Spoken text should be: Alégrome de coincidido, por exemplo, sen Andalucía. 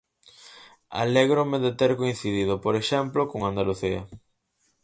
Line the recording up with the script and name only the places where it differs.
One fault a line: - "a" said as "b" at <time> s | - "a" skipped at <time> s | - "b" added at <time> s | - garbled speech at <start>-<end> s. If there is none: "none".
- "ter" added at 1.8 s
- "sen" said as "con" at 3.3 s